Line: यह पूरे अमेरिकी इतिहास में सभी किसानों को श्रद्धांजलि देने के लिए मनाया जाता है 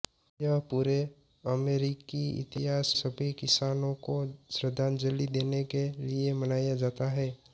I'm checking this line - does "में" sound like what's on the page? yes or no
no